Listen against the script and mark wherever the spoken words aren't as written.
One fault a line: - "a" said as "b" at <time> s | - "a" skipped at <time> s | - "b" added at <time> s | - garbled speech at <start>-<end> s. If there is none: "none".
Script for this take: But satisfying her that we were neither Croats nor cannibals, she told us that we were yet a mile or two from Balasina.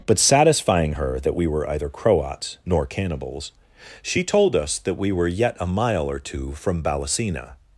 - "neither" said as "either" at 1.7 s